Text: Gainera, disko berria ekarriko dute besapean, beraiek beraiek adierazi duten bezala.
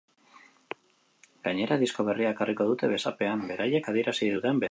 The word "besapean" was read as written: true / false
true